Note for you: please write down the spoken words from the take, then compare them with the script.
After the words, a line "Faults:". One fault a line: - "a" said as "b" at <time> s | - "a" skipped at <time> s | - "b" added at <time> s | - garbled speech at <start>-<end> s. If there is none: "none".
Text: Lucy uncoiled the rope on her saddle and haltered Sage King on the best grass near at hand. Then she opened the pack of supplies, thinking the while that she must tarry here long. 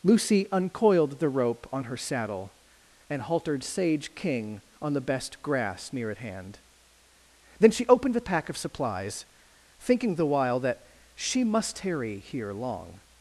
Lucy uncoiled the rope on her saddle and haltered Sage King on the best grass near at hand. Then she opened the pack of supplies, thinking the while that she must tarry here long.
Faults:
none